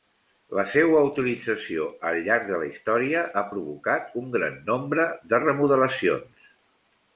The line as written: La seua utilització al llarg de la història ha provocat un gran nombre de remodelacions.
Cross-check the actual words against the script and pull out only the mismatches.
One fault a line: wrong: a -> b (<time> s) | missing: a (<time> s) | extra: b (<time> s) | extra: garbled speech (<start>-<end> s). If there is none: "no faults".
no faults